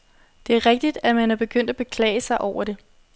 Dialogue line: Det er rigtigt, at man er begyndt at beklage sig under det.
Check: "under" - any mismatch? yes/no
yes